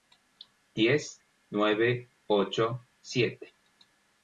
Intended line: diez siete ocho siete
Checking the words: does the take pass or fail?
fail